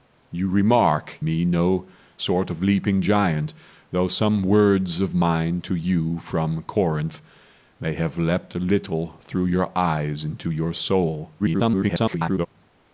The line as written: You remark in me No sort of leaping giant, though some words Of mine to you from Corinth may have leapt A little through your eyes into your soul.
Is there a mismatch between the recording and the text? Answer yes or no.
yes